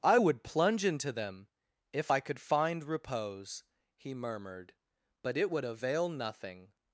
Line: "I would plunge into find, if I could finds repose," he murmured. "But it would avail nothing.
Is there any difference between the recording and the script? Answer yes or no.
yes